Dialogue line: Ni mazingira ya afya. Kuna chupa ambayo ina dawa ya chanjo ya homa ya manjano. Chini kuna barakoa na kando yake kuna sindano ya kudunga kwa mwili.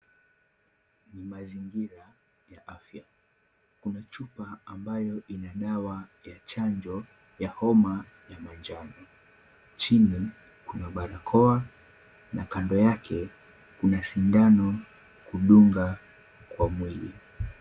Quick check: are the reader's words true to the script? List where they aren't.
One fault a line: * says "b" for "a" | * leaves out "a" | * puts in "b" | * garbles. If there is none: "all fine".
* leaves out "ya"